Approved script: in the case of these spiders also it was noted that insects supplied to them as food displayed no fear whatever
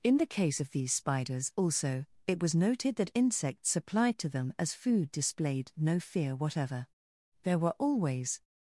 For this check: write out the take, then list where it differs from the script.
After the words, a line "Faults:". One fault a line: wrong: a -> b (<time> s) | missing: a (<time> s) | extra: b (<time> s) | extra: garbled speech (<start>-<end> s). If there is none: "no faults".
in the case of these spiders also it was noted that insects supplied to them as food displayed no fear whatever there were always
Faults:
extra: there were always (7.4 s)